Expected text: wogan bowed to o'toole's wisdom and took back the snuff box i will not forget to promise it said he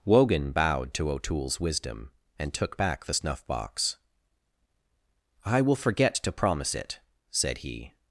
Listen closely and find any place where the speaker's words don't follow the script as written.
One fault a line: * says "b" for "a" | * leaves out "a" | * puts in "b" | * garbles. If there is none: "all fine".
* leaves out "not"